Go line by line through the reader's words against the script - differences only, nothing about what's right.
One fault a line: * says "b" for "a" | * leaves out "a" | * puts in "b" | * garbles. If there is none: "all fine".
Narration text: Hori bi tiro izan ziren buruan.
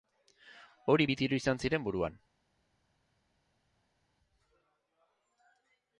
all fine